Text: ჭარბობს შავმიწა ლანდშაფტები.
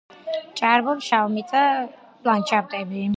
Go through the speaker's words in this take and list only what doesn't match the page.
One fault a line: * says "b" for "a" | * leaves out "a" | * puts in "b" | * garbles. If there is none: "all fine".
all fine